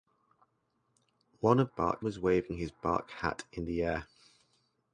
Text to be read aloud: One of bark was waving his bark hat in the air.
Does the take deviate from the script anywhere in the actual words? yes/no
no